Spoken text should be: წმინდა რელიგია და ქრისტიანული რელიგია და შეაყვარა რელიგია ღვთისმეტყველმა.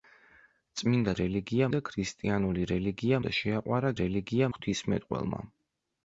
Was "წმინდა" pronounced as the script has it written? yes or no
yes